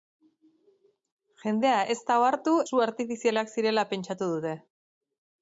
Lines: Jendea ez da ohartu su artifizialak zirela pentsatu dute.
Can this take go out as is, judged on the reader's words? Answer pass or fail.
pass